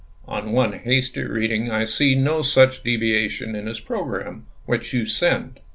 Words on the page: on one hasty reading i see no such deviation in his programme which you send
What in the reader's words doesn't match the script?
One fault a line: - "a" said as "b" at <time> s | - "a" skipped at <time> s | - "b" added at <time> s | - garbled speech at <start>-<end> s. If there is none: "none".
none